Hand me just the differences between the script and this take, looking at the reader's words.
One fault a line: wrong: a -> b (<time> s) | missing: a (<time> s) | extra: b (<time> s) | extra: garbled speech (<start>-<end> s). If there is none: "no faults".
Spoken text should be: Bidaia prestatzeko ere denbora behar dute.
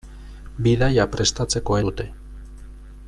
missing: ere denbora behar (1.8 s)